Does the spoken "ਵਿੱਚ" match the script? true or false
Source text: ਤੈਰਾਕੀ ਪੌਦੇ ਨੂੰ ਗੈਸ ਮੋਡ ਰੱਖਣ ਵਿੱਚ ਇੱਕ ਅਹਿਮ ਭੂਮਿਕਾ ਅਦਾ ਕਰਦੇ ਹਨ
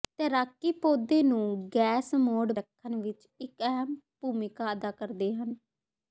true